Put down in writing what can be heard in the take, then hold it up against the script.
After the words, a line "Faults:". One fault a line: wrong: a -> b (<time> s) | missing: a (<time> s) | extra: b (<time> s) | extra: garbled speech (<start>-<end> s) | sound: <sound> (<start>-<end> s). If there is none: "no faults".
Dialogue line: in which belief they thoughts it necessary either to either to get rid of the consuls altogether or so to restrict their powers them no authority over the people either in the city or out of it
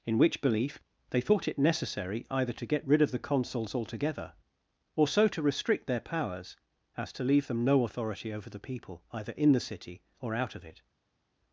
in which belief they thought it necessary either to get rid of the consuls altogether or so to restrict their powers as to leave them no authority over the people either in the city or out of it
Faults:
wrong: thoughts -> thought (1.2 s)
missing: either to (2.6 s)
extra: as to leave (7.0 s)